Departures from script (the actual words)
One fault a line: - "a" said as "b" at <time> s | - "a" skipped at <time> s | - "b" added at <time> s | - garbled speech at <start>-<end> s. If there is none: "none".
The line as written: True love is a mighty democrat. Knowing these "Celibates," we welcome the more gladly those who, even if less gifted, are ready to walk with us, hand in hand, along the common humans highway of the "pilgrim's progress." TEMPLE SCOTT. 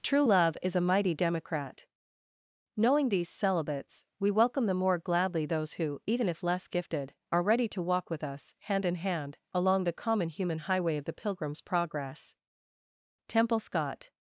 - "humans" said as "human" at 10.3 s